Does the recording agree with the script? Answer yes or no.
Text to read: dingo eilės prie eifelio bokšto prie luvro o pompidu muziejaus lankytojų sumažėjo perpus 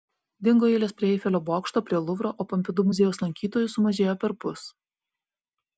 yes